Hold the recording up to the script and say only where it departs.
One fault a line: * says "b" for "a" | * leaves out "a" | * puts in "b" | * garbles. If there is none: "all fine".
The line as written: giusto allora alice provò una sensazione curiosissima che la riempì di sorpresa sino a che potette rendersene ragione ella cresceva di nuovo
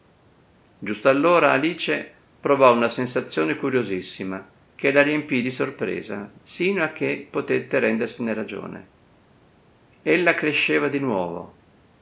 all fine